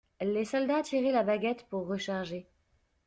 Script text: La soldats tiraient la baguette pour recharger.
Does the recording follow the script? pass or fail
fail